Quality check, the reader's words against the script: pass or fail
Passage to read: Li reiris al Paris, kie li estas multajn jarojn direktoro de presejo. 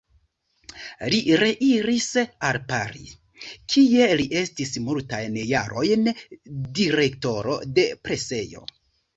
fail